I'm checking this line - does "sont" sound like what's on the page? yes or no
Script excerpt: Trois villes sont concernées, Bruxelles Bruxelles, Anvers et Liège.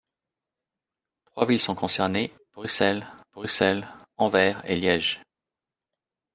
yes